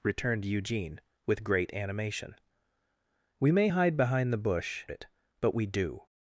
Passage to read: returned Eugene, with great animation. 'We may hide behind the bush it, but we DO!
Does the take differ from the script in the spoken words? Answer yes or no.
no